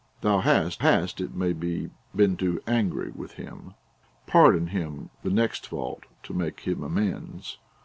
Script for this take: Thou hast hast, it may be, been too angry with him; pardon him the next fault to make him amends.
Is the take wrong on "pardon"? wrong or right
right